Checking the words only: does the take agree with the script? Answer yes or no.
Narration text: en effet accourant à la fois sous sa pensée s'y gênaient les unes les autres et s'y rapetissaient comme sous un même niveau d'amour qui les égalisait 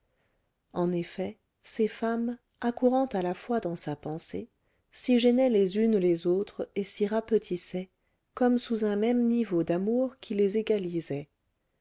no